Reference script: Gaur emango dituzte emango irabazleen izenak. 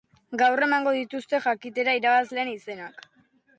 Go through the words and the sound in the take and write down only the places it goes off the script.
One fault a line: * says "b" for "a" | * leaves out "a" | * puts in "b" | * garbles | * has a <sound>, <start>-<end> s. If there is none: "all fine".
* says "jakitera" for "emango"